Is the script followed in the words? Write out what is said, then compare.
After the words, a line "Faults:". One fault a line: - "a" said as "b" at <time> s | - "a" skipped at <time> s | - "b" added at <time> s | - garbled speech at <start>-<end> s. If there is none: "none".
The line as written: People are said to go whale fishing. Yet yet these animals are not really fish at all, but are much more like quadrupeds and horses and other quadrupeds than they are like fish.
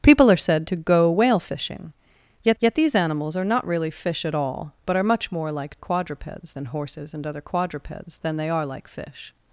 People are said to go whale fishing. Yet yet these animals are not really fish at all, but are much more like quadrupeds and horses and other quadrupeds than they are like fish.
Faults:
none